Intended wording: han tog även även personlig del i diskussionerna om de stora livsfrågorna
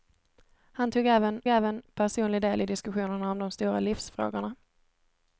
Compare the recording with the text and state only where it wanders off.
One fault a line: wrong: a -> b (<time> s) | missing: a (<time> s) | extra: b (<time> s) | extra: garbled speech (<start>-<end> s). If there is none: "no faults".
no faults